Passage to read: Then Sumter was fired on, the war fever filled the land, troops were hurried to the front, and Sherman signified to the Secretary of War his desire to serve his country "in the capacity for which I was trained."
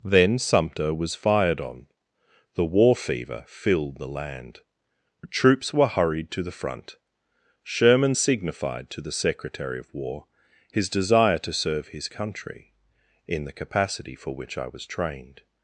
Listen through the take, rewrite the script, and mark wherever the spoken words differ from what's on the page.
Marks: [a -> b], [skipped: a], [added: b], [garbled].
Then Sumter was fired on, the war fever filled the land, troops were hurried to the front, [skipped: and] Sherman signified to the Secretary of War his desire to serve his country "in the capacity for which I was trained."